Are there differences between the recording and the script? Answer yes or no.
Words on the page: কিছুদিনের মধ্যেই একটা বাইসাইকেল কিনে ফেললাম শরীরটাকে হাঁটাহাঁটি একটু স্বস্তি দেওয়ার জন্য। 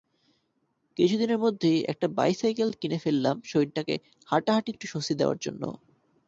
no